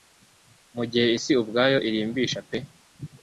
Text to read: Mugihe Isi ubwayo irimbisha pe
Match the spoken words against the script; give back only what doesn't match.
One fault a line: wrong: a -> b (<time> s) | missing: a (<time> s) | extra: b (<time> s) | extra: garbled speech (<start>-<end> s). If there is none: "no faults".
no faults